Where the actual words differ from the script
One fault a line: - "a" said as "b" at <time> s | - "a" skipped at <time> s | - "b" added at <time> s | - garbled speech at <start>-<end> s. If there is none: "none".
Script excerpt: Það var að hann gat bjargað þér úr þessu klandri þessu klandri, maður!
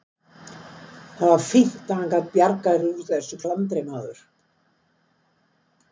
- "fínt" added at 1.5 s
- "þessu klandri" skipped at 3.9 s